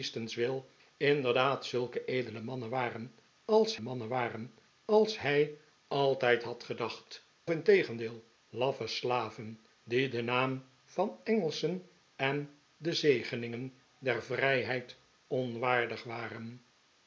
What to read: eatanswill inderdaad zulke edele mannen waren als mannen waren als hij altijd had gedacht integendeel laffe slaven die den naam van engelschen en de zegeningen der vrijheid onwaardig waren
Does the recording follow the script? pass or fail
pass